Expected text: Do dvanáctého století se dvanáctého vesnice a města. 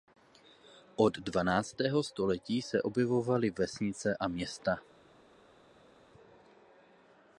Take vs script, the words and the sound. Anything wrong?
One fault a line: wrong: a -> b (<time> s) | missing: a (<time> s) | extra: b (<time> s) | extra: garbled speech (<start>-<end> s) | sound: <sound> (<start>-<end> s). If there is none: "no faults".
wrong: Do -> Od (0.9 s)
wrong: dvanáctého -> objevovaly (2.8 s)